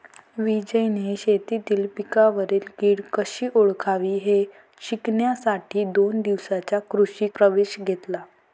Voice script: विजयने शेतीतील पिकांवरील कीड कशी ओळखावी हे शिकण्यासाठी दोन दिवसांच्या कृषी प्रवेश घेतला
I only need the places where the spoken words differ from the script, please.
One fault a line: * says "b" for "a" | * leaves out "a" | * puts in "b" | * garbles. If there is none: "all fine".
all fine